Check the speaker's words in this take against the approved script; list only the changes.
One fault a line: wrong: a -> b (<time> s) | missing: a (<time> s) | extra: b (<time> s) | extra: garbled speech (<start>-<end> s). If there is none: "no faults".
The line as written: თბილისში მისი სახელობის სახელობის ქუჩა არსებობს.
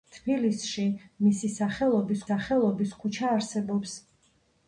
no faults